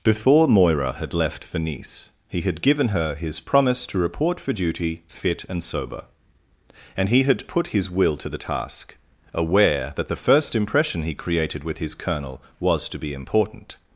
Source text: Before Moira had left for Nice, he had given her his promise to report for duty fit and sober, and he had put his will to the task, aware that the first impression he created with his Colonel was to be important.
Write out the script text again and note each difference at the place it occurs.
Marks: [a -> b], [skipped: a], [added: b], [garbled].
Before Moira had left for Nice, he had given her his promise to report for duty fit and sober, and he had put his will to the task, aware that the first impression he created with his Colonel was to be important.